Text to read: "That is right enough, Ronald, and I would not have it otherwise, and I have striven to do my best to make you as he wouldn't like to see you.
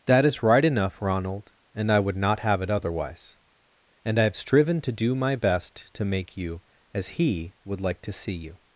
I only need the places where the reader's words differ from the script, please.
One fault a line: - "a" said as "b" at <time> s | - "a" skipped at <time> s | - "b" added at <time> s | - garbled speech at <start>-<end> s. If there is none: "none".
- "wouldn't" said as "would" at 7.6 s